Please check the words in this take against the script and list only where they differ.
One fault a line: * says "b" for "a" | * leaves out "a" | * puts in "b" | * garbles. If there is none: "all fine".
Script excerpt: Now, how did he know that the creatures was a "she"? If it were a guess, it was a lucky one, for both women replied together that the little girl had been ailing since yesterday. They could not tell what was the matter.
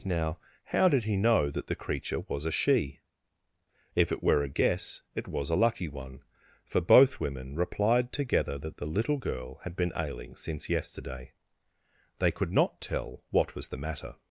* says "creature" for "creatures"